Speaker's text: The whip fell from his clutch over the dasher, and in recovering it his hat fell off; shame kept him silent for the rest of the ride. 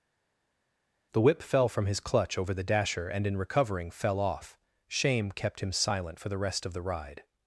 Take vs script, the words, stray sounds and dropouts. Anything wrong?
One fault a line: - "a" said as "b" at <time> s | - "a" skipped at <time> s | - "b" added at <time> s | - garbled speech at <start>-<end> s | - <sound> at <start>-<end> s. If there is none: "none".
- "it his hat" skipped at 3.9 s